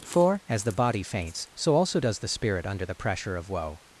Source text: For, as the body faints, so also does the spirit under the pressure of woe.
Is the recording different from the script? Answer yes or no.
no